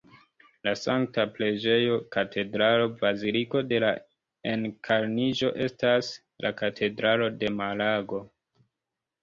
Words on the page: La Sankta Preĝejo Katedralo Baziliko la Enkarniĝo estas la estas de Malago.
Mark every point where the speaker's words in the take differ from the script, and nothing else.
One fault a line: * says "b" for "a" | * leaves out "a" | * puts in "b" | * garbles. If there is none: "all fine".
* puts in "de"
* says "katedralo" for "estas"